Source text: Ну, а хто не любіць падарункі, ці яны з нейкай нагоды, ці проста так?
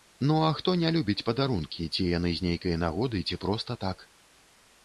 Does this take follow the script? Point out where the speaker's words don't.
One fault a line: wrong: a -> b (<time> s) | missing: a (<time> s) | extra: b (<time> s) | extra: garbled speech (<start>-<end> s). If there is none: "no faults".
no faults